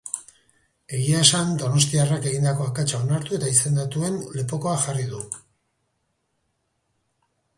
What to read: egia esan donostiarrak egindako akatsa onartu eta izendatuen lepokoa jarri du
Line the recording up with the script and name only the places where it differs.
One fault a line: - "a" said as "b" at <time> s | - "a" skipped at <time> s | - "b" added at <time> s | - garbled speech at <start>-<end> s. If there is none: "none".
none